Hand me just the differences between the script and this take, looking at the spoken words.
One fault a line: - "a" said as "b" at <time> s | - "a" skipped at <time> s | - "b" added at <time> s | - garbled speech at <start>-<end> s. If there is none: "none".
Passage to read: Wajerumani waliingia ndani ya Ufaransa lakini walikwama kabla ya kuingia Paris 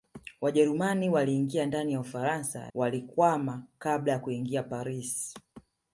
- "lakini" skipped at 2.7 s